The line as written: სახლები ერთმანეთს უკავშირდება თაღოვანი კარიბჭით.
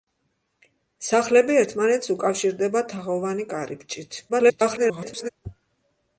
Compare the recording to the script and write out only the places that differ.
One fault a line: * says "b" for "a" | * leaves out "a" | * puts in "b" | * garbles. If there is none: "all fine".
* garbles